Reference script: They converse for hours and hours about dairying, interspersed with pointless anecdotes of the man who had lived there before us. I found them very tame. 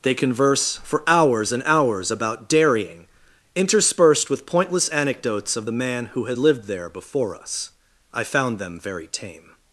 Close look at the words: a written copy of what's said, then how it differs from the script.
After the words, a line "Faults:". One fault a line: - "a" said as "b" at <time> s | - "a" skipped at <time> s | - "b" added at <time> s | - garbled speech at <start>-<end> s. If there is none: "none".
They converse for hours and hours about dairying, interspersed with pointless anecdotes of the man who had lived there before us. I found them very tame.
Faults:
none